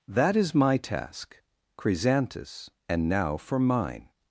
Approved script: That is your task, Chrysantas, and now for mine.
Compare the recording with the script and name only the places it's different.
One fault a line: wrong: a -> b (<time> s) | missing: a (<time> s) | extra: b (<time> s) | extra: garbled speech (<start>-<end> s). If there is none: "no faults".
wrong: your -> my (0.6 s)